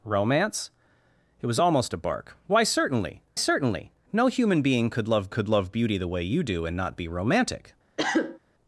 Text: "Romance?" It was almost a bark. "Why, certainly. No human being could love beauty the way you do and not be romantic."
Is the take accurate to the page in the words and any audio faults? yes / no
no